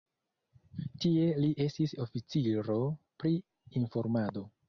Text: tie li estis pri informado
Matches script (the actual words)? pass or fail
fail